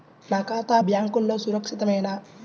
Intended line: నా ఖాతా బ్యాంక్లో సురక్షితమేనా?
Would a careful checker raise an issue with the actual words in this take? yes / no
no